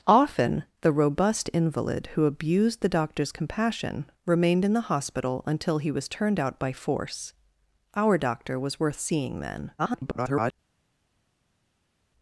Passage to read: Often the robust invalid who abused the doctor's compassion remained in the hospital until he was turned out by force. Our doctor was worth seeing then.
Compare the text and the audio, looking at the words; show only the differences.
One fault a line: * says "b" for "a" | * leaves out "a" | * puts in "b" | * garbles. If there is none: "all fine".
* garbles